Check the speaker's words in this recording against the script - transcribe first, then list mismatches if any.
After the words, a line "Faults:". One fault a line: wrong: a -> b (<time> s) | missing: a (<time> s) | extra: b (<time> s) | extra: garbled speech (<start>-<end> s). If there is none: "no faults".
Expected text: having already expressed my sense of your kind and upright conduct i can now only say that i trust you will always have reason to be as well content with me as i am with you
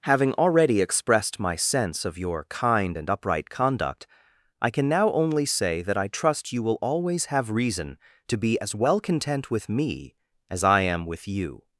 having already expressed my sense of your kind and upright conduct i can now only say that i trust you will always have reason to be as well content with me as i am with you
Faults:
no faults